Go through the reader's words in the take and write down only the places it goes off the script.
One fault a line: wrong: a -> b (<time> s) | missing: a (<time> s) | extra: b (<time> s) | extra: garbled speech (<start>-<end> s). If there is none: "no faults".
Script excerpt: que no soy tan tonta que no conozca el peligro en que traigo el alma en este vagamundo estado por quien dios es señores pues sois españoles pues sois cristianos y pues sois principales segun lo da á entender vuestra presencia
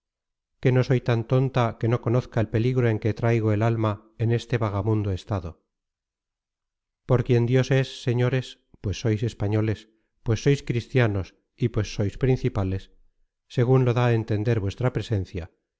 no faults